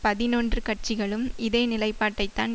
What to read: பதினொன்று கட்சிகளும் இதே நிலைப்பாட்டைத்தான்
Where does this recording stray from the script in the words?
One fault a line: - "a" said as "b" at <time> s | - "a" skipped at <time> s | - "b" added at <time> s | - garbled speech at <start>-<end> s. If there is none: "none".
none